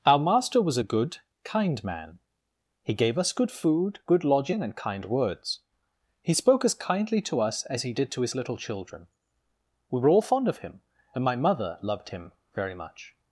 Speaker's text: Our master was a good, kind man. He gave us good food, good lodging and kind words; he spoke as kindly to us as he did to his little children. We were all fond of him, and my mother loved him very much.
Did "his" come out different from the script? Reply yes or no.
no